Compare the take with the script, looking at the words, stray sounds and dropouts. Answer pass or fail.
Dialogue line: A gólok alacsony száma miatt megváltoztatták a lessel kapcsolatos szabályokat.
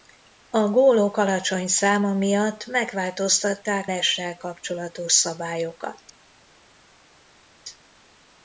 fail